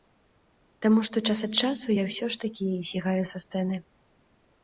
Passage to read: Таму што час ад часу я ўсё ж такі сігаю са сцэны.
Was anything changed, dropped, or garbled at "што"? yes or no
no